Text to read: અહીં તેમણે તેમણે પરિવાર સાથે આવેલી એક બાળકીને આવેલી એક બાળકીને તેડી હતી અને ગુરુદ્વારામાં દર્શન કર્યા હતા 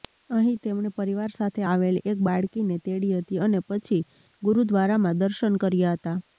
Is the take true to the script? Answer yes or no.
no